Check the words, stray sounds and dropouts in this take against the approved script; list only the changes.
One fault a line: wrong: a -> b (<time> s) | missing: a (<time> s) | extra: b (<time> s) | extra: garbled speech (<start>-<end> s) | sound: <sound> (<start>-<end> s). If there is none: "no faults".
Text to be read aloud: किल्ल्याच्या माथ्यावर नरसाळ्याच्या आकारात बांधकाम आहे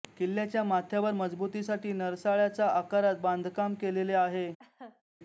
extra: मजबुतीसाठी (1.1 s)
extra: केलेले (3.7 s)
sound: laugh (4.6-5.0 s)